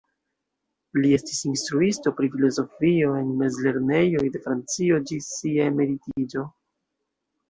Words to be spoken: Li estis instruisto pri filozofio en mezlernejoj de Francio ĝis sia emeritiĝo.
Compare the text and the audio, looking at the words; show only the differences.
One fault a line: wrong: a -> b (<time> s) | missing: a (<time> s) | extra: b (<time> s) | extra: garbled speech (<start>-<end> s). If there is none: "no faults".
no faults